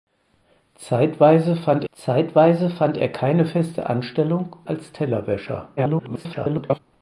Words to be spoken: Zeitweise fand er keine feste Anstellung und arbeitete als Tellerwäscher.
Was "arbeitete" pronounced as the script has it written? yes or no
no